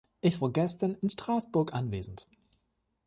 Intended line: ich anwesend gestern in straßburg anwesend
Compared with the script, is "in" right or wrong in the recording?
right